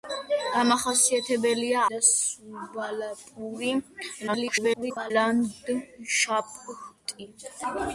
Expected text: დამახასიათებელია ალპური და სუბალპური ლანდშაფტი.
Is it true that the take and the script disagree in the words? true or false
true